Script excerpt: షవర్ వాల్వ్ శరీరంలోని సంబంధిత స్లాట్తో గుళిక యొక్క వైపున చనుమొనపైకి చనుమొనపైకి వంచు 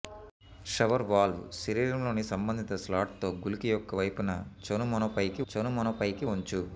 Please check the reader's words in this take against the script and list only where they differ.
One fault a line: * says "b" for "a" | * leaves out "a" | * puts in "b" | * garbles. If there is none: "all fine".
all fine